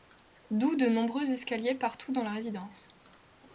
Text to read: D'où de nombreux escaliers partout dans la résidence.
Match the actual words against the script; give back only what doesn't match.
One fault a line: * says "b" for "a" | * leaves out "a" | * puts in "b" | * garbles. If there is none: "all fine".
all fine